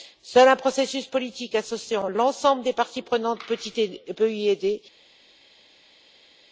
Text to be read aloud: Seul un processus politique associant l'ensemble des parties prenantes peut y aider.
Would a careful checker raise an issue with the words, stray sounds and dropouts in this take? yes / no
no